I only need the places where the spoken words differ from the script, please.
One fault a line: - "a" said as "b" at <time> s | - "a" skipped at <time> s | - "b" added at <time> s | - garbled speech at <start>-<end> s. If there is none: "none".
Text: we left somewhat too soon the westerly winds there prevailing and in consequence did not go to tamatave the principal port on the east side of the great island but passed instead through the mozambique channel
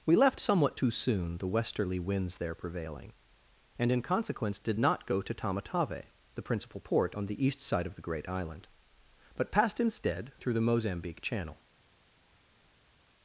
none